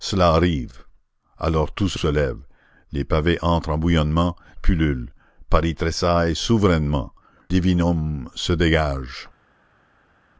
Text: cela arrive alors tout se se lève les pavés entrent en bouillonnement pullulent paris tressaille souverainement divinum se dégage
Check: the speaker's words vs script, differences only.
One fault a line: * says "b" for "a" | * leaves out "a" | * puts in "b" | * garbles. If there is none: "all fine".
all fine